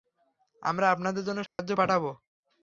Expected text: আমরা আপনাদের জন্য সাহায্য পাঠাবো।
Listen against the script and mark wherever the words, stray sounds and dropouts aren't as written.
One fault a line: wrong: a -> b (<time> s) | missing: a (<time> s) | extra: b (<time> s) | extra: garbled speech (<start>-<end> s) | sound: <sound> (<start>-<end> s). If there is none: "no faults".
sound: dropout (1.5-1.6 s)